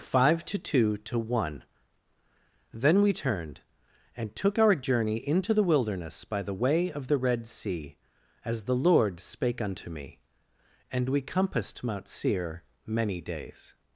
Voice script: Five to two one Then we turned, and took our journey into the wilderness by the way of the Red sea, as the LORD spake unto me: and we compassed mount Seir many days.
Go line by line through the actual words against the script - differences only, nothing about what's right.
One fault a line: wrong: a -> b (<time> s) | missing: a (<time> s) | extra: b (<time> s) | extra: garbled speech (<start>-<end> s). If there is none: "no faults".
extra: to (1.0 s)